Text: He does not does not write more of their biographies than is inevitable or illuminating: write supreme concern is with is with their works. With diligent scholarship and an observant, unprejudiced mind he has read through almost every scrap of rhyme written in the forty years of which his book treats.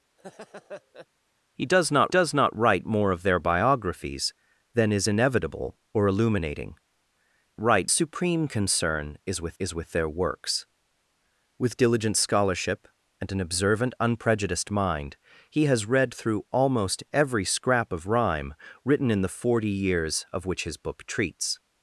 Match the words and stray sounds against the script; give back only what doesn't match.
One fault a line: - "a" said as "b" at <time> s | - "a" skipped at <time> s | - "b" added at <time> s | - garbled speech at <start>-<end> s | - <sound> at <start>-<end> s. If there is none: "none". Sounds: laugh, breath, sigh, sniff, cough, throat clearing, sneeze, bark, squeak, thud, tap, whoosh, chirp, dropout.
- laugh at 0.2-1.1 s